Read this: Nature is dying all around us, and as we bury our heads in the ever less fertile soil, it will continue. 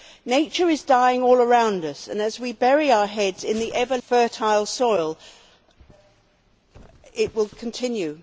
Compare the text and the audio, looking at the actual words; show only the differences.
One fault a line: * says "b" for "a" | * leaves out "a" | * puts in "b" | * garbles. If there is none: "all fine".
* leaves out "less"